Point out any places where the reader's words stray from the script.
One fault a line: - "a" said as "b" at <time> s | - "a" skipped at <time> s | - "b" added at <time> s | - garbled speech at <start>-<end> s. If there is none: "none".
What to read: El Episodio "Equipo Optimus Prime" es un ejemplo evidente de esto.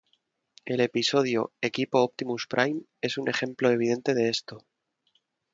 none